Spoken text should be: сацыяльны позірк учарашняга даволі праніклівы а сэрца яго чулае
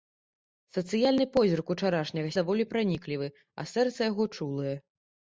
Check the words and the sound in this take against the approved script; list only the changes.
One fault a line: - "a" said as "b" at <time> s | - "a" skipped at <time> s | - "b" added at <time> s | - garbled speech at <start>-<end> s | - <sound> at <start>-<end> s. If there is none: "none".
none